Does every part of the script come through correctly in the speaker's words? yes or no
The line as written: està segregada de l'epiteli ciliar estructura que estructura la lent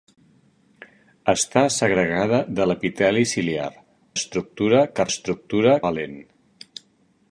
yes